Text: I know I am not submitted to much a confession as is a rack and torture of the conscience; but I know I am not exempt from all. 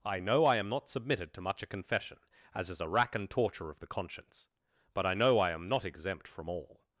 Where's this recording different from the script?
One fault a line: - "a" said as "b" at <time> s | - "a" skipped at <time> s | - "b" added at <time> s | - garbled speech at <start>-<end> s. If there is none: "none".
none